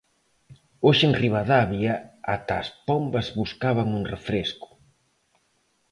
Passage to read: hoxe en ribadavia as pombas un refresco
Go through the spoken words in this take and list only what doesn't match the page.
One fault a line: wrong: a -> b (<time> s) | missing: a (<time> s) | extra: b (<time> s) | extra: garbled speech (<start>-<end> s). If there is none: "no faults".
extra: ata (2.4 s)
extra: buscaban (3.4 s)